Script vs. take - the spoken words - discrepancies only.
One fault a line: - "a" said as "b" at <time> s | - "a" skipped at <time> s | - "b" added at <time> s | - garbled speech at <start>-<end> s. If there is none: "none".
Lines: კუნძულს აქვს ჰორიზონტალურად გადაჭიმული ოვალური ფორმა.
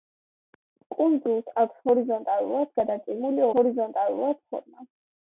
- "ოვალური" said as "ჰორიზონტალურად" at 3.6 s